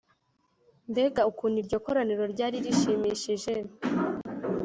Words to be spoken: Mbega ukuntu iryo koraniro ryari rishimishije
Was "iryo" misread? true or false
false